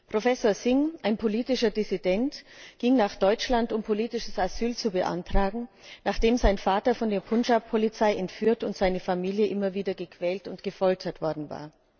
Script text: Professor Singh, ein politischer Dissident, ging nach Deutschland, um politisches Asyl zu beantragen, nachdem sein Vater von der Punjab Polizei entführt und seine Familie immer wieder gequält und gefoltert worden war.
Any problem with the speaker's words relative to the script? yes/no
no